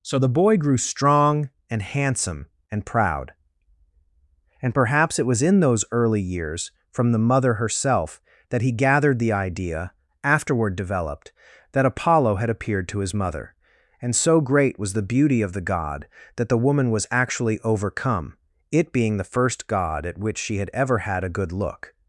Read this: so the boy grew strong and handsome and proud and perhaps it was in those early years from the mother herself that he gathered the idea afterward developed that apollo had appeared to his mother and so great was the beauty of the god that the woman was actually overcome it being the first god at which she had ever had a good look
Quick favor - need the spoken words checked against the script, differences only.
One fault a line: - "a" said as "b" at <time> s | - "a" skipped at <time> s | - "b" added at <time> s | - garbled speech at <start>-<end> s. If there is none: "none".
none